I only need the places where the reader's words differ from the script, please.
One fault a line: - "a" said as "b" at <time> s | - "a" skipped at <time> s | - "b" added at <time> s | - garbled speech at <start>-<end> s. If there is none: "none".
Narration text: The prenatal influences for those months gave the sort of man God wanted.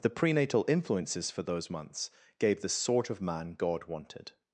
none